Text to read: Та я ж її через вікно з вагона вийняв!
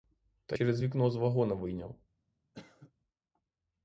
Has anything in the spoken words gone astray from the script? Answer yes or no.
yes